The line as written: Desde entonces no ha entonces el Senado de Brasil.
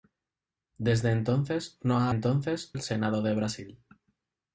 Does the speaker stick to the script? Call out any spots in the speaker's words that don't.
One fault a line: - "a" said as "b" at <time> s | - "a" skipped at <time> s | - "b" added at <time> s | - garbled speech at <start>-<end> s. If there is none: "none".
none